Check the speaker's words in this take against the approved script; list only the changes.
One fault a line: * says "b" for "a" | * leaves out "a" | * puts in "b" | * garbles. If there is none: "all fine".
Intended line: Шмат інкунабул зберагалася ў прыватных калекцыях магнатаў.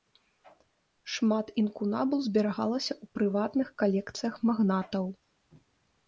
all fine